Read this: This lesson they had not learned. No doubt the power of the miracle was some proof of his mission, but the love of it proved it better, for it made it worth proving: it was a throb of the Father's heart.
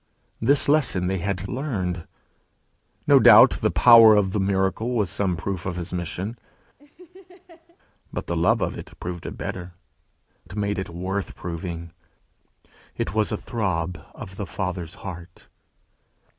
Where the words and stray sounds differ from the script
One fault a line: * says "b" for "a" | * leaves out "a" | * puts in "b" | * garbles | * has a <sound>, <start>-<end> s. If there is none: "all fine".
* leaves out "not"
* has a laugh, 6.8-7.8 s
* leaves out "for"